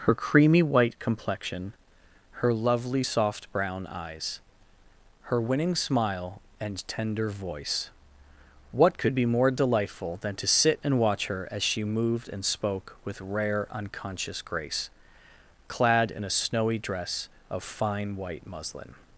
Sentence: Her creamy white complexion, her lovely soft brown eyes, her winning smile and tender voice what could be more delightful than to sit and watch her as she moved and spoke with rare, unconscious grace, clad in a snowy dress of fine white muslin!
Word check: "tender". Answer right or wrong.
right